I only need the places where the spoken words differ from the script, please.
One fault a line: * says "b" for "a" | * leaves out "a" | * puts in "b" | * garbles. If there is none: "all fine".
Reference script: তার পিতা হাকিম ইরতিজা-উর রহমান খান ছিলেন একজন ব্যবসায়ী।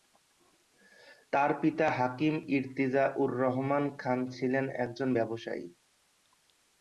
all fine